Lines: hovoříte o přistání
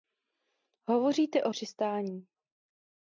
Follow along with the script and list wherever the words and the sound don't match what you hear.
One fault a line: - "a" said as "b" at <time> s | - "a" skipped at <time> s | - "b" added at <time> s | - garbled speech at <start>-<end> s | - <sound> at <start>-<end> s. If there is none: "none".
none